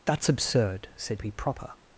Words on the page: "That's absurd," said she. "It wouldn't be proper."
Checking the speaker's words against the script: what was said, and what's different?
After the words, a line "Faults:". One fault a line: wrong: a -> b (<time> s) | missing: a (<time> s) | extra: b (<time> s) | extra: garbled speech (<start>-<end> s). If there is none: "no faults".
"That's absurd," said be proper."
Faults:
missing: she It wouldn't (1.2 s)